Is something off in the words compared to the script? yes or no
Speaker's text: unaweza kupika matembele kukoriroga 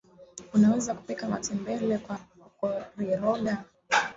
yes